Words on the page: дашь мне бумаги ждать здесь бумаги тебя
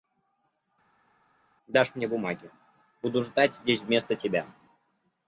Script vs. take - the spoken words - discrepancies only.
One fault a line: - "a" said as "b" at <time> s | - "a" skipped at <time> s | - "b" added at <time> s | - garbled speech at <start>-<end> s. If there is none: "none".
- "буду" added at 3.0 s
- "бумаги" said as "вместо" at 3.8 s